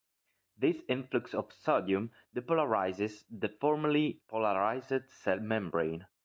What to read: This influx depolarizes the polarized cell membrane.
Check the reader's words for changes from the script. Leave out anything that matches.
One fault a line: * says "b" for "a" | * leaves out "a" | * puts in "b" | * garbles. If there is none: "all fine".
* puts in "of sodium"
* puts in "formerly"